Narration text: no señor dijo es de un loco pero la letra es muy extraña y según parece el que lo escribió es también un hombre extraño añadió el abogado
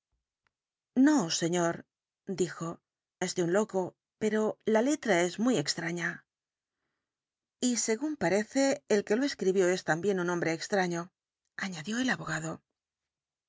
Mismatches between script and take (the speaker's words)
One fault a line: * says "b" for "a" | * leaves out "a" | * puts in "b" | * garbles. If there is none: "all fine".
all fine